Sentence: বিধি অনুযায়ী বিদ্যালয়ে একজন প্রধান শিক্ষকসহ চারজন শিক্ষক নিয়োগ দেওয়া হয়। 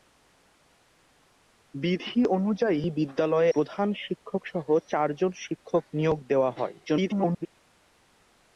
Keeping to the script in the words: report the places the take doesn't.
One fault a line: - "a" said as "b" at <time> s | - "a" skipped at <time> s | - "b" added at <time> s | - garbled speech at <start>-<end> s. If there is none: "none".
- "একজন" skipped at 3.5 s
- garbled speech at 6.8-7.5 s